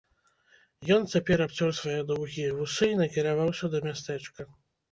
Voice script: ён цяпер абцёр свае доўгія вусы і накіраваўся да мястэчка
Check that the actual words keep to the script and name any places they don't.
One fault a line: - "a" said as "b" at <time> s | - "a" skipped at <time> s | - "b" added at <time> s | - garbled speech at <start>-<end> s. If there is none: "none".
none